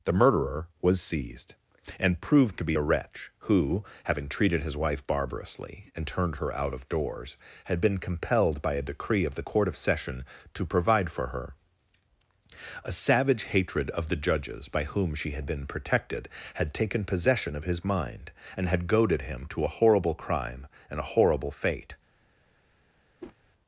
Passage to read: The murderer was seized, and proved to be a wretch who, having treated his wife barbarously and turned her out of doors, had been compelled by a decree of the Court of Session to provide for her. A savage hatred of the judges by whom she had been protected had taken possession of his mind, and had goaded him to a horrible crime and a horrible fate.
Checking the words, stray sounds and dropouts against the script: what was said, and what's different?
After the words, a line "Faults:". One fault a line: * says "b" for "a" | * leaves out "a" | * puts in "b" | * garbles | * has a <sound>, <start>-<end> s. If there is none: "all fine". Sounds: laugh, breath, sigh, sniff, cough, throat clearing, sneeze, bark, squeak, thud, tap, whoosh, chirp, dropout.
The murderer was seized, and proved to be a wretch who, having treated his wife barbarously and turned her out of doors, had been compelled by a decree of the Court of Session to provide for her. A savage hatred of the judges by whom she had been protected had taken possession of his mind, and had goaded him to a horrible crime and a horrible fate.
Faults:
* has a whoosh, 23.2-23.4 s